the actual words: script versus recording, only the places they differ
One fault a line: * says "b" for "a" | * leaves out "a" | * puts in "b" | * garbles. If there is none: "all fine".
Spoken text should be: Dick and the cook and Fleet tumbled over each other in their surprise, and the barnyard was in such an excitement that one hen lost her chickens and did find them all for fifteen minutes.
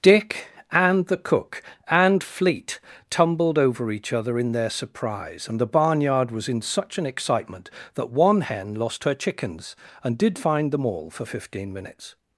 all fine